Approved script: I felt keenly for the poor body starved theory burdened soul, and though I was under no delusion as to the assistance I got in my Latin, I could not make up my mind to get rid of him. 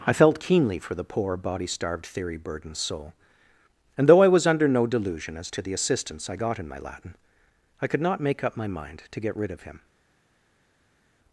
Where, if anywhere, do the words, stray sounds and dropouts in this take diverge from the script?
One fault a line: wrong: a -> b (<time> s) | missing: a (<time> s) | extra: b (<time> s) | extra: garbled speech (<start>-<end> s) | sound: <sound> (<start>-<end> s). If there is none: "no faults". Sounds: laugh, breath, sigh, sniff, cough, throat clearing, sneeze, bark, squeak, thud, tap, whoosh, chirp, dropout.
no faults